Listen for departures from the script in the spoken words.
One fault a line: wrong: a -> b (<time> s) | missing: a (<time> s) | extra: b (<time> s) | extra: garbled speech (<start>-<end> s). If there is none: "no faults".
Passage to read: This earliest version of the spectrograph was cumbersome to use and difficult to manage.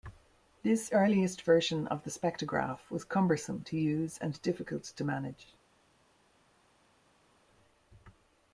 no faults